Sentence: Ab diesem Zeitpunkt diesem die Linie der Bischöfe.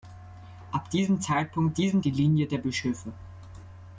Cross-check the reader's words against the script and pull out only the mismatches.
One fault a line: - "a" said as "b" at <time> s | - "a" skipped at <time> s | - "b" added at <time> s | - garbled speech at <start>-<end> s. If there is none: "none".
none